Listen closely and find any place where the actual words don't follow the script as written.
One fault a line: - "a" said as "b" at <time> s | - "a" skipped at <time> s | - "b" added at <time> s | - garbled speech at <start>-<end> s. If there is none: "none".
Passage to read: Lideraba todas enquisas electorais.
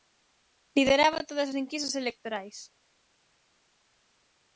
none